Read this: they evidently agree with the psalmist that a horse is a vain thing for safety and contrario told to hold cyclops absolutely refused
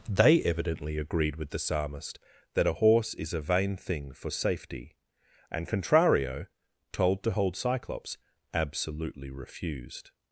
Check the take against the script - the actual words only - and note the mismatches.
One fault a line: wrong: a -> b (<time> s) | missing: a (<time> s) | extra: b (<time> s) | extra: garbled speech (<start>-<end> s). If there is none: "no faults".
wrong: agree -> agreed (1.0 s)